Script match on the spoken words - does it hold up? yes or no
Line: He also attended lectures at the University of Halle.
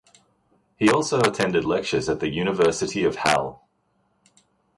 yes